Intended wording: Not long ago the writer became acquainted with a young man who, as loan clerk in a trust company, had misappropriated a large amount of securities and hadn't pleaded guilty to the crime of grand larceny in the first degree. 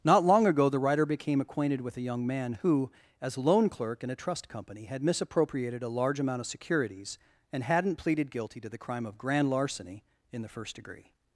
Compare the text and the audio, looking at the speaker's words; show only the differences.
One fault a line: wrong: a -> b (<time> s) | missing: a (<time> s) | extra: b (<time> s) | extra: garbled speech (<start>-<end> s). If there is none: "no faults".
no faults